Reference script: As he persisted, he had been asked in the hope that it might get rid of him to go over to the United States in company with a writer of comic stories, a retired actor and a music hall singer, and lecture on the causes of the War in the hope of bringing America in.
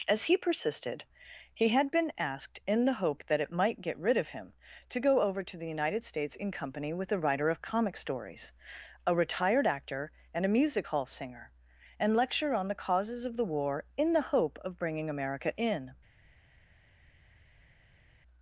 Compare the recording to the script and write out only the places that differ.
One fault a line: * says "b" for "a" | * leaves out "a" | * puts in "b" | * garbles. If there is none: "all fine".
all fine